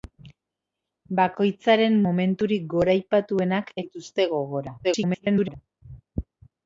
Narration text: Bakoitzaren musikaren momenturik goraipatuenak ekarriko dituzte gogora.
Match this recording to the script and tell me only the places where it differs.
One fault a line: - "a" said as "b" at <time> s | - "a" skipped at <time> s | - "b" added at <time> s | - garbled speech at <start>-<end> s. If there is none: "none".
- "musikaren" skipped at 2.0 s
- "ekarriko" skipped at 3.7 s
- garbled speech at 4.8-5.6 s